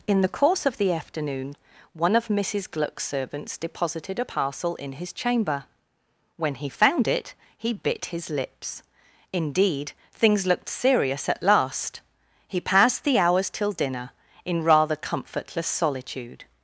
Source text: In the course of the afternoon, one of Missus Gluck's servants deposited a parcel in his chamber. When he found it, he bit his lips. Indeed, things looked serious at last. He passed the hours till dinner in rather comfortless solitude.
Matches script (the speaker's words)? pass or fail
pass